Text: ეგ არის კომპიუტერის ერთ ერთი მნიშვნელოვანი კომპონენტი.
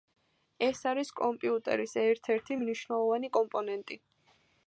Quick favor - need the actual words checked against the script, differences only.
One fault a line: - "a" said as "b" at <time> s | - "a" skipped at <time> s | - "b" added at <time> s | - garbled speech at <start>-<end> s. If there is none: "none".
- "ეგ" said as "ეს" at 0.7 s